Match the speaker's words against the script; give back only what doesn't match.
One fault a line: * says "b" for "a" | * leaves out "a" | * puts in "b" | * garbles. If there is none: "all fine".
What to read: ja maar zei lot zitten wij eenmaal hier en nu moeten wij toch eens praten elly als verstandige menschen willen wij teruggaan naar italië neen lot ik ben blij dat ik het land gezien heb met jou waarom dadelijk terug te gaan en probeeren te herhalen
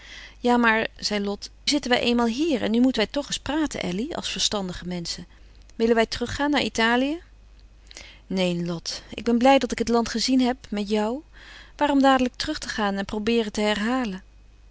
all fine